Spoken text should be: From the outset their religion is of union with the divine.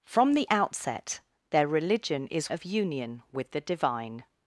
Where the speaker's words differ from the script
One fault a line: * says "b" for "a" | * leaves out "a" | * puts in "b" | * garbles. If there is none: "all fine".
all fine